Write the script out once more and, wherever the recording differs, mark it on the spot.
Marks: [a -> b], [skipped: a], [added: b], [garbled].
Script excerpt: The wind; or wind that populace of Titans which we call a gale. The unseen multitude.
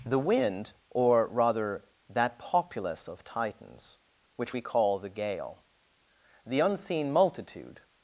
The wind; or [wind -> rather] that populace of Titans which we call [a -> the] gale. The unseen multitude.